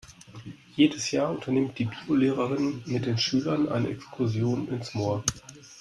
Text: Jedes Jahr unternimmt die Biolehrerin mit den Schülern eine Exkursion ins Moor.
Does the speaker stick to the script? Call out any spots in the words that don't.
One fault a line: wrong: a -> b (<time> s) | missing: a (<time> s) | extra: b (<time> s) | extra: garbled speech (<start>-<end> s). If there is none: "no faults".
no faults